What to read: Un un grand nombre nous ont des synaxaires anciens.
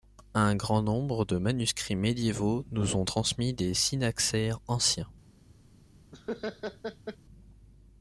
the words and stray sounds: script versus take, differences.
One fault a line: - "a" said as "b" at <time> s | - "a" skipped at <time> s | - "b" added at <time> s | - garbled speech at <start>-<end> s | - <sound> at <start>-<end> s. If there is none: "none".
- "un" skipped at 0.6 s
- "de manuscrits médiévaux" added at 1.2 s
- "transmis" added at 3.0 s
- laugh at 6.1-7.2 s